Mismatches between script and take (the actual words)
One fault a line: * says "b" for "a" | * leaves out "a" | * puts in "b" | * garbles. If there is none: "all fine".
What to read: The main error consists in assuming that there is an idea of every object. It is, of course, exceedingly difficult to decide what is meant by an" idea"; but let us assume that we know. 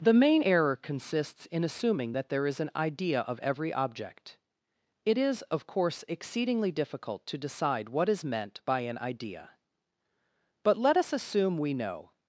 * leaves out "that"